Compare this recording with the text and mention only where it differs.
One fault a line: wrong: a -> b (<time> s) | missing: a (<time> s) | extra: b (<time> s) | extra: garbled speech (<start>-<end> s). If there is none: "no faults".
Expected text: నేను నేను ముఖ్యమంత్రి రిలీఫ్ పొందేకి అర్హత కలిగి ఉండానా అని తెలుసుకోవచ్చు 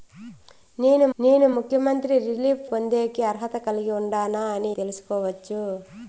no faults